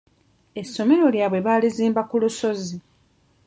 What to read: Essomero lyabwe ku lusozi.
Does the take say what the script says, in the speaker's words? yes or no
no